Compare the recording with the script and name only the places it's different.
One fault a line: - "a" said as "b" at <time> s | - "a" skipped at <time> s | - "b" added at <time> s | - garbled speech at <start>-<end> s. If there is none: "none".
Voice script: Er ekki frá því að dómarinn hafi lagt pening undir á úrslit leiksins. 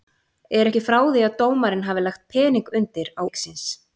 - "úrslit" skipped at 3.2 s